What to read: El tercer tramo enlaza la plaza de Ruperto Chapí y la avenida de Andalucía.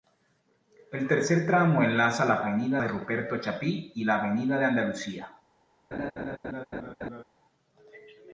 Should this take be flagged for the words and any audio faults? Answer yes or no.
yes